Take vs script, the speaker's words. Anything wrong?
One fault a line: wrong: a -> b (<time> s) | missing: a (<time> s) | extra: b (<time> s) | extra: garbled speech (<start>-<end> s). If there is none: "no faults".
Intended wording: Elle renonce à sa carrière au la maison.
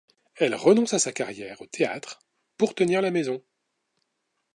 extra: théâtre pour tenir (1.7 s)